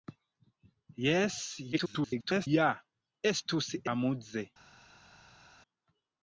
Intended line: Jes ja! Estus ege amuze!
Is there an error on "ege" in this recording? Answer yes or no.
yes